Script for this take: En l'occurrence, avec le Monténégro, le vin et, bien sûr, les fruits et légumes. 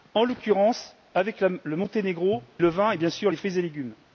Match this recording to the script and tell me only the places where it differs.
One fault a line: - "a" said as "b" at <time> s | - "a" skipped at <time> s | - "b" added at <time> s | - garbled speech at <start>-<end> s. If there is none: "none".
none